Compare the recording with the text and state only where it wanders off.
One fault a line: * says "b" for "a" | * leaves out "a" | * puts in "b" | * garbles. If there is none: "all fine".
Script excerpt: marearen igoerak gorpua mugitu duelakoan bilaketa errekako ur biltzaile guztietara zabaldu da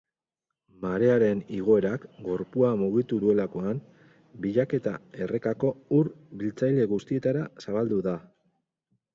all fine